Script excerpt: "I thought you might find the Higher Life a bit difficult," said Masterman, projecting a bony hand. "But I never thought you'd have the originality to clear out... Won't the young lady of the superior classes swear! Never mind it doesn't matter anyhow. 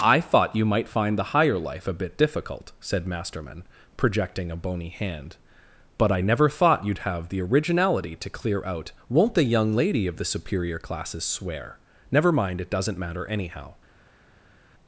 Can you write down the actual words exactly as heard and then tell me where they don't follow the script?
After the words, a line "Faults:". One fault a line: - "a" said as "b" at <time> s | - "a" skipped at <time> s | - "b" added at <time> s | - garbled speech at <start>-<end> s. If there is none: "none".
"I thought you might find the Higher Life a bit difficult," said Masterman, projecting a bony hand. "But I never thought you'd have the originality to clear out... Won't the young lady of the superior classes swear! Never mind it doesn't matter anyhow.
Faults:
none